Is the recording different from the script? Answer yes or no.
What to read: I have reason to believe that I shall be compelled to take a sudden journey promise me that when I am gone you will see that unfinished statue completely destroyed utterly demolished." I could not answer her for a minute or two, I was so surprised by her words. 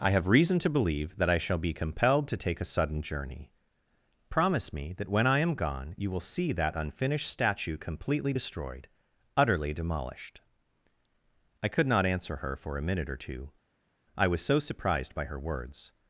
no